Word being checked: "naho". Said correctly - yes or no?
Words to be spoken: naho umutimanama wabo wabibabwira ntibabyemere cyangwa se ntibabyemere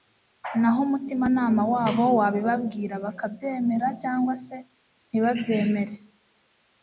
yes